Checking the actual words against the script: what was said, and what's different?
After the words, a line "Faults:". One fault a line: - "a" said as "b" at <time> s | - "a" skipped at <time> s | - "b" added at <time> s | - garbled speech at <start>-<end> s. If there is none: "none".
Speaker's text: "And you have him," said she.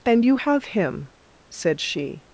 "And you have him," said she.
Faults:
none